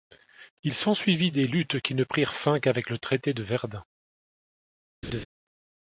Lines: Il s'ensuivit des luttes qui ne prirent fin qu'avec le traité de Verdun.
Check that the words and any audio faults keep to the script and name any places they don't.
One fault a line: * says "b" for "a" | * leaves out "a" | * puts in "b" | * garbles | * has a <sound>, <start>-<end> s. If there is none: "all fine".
* has a laugh, 5.0-5.3 s